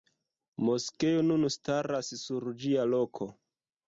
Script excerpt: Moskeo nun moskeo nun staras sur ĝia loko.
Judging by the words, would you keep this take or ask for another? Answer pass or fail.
fail